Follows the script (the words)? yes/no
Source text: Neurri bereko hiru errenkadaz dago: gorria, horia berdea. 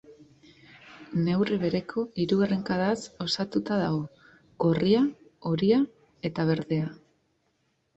no